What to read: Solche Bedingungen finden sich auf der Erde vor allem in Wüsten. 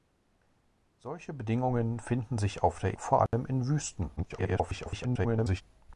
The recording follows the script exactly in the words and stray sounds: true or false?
false